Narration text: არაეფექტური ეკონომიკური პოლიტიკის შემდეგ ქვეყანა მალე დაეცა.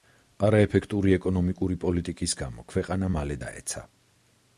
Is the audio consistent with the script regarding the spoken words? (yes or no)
no